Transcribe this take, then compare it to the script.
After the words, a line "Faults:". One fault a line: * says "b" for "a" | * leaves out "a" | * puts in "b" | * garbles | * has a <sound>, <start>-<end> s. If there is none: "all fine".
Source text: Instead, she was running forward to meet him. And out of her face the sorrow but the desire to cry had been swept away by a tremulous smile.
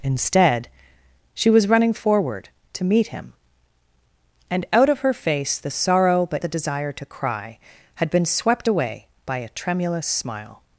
Instead, she was running forward to meet him. And out of her face the sorrow but the desire to cry had been swept away by a tremulous smile.
Faults:
all fine